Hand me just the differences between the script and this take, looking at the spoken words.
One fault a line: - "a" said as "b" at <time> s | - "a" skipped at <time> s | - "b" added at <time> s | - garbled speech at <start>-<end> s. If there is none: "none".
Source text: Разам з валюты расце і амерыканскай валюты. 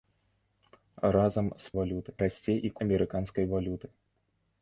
none